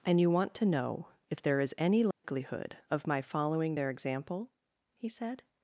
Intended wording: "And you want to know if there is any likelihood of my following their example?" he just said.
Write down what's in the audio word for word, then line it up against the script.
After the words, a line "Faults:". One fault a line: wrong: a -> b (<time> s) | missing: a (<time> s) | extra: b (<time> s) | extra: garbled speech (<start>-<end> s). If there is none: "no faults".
"And you want to know if there is any likelihood of my following their example?" he said.
Faults:
missing: just (5.1 s)